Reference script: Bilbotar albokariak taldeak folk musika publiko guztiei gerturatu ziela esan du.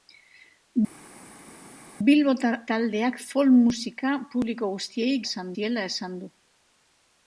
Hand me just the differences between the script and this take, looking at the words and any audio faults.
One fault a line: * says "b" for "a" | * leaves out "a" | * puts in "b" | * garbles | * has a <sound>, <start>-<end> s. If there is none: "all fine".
* leaves out "albokariak"
* says "esan" for "gerturatu"